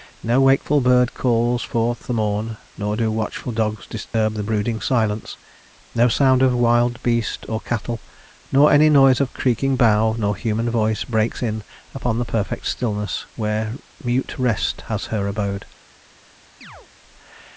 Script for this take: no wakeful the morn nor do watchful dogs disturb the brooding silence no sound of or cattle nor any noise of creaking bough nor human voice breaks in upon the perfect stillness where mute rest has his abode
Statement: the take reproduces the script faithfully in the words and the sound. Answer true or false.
false